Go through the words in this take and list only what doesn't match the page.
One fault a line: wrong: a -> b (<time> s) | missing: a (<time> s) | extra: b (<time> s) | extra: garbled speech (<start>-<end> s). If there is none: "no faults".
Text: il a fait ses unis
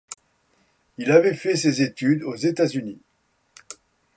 wrong: a -> avait (1.1 s)
extra: études aux états (1.8 s)